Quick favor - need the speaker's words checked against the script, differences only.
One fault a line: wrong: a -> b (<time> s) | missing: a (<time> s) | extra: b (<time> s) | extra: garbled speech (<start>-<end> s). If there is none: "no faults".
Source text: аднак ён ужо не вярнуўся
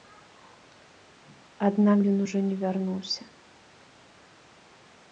no faults